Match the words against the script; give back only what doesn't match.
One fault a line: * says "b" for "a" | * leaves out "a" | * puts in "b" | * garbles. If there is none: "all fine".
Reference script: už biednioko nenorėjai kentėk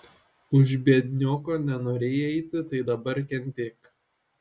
* puts in "eiti tai dabar"